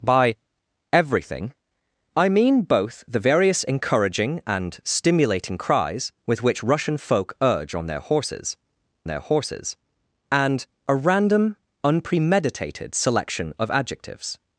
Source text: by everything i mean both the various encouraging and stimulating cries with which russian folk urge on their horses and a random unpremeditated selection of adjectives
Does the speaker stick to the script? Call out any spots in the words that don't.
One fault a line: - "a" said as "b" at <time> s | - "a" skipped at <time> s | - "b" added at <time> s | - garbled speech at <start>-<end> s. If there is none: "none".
- "their horses" added at 9.1 s